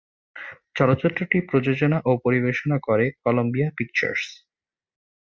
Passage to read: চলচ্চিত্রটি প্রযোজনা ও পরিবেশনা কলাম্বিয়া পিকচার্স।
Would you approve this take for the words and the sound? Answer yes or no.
no